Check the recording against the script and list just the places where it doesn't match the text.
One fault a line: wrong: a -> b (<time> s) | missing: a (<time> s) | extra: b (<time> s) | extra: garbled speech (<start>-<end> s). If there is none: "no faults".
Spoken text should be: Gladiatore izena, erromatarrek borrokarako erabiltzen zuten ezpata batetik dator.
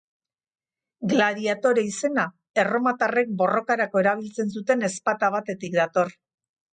no faults